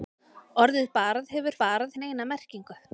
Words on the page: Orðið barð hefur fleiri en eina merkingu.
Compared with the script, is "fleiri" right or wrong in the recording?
wrong